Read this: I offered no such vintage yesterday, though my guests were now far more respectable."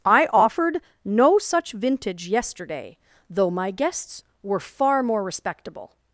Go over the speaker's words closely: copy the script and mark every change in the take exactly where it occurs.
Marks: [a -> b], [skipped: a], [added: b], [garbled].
I offered no such vintage yesterday, though my guests were [skipped: now] far more respectable."